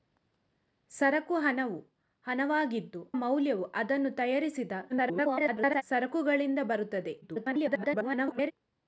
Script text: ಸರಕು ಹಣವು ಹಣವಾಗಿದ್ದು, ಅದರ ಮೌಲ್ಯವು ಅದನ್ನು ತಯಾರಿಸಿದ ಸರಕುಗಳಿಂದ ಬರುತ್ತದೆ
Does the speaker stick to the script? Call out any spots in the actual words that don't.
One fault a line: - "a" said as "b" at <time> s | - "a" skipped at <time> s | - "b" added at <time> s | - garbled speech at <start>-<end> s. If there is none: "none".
- "ಅದರ" skipped at 3.0 s
- garbled speech at 4.9-5.8 s
- garbled speech at 7.2-8.5 s